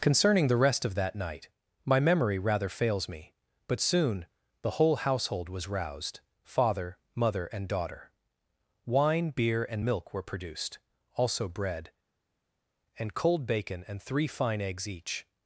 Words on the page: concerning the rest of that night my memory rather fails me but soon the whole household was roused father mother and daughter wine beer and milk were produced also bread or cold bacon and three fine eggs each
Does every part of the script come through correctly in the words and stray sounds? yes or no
no